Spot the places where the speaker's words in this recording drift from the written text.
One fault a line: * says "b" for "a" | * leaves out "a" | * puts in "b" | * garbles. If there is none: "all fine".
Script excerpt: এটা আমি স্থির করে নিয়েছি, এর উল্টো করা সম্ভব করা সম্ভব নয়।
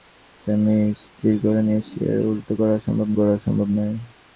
all fine